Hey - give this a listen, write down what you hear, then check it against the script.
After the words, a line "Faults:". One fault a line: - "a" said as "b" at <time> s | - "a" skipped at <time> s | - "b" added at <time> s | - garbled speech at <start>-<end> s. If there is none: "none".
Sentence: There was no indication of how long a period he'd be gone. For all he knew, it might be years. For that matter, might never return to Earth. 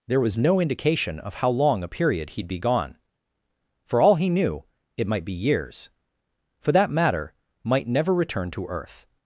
There was no indication of how long a period he'd be gone. For all he knew, it might be years. For that matter, might never return to Earth.
Faults:
none